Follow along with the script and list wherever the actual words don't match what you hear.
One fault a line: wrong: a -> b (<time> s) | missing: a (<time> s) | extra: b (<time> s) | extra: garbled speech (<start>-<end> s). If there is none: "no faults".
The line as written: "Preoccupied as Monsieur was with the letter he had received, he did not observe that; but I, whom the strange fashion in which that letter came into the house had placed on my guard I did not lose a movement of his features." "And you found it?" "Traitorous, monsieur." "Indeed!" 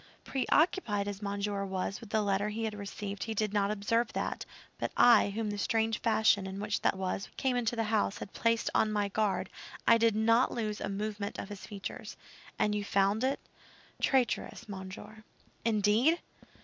wrong: letter -> was (6.9 s)